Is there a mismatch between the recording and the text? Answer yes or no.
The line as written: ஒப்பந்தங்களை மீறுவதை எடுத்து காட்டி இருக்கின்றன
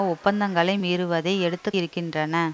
yes